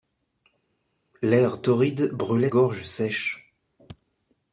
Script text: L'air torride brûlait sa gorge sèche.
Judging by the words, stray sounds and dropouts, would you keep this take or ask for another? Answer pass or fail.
fail